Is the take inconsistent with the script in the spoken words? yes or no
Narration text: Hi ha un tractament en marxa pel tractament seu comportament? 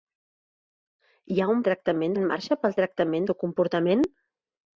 no